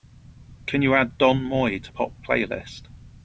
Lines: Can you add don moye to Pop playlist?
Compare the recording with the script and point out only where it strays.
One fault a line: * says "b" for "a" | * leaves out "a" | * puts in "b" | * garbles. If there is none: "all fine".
all fine